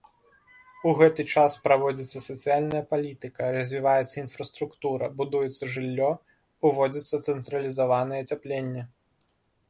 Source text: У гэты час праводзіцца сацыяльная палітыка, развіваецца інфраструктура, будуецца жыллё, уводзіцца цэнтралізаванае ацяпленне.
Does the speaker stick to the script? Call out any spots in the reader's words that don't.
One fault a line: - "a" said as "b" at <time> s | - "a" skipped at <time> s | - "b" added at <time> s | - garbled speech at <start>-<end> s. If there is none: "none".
none